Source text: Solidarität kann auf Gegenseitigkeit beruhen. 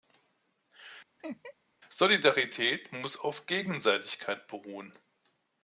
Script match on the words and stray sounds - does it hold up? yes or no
no